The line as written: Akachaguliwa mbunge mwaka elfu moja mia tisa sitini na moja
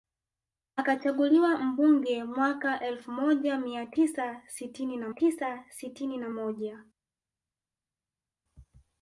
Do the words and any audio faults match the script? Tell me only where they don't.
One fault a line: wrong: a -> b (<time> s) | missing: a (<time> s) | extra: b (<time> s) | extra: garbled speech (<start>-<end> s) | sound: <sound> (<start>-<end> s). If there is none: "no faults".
extra: tisa sitini na (5.1 s)